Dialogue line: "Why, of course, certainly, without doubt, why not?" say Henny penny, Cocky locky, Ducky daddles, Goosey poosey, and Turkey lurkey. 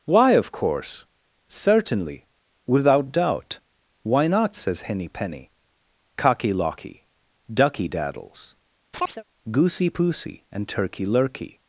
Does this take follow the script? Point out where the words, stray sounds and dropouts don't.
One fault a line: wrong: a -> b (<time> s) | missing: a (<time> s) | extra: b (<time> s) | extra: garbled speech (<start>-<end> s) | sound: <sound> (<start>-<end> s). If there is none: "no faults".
wrong: say -> says (4.6 s)
sound: chirp (8.9-9.2 s)